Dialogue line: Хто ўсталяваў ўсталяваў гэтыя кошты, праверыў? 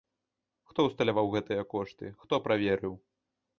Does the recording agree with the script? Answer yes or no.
no